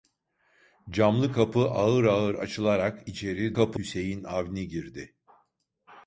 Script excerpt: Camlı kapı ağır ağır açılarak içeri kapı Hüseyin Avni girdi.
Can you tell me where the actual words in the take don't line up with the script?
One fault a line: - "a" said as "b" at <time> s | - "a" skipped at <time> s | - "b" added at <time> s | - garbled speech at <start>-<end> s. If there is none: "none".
none